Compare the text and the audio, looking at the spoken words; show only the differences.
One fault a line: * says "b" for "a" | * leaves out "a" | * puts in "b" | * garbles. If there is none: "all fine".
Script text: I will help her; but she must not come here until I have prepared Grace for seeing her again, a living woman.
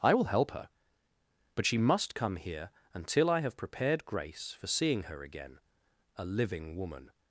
* leaves out "not"